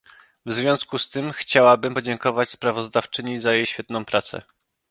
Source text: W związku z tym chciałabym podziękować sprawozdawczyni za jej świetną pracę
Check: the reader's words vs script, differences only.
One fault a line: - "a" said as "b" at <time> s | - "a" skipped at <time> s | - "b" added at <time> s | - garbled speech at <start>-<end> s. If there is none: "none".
none